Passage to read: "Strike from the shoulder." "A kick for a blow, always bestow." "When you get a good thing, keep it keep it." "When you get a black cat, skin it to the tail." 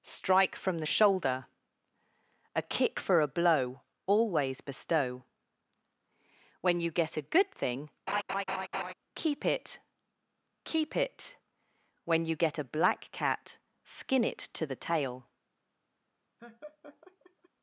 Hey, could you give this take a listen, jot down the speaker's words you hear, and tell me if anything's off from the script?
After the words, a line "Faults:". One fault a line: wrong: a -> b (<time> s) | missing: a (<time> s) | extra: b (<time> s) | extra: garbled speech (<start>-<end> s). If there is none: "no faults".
"Strike from the shoulder." "A kick for a blow, always bestow." "When you get a good thing, keep it keep it." "When you get a black cat, skin it to the tail."
Faults:
no faults